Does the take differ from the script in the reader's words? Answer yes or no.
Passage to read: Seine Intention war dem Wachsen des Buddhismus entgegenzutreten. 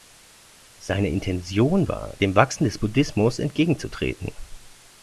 no